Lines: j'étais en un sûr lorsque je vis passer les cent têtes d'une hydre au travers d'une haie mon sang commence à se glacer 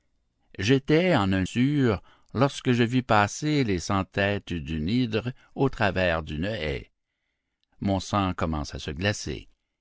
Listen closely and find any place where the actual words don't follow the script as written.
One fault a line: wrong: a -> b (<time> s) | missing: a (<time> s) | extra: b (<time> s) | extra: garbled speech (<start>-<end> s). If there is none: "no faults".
no faults